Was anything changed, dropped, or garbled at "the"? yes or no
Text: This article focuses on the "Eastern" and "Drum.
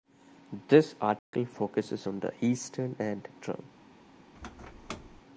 no